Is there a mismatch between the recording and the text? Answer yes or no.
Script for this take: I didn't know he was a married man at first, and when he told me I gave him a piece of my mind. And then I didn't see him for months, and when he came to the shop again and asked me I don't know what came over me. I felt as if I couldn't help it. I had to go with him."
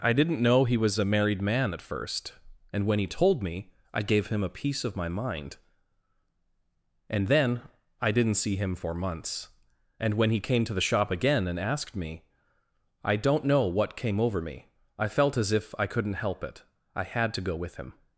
no